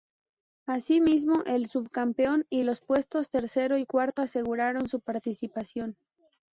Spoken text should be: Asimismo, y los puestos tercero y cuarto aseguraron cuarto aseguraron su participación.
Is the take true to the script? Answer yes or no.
no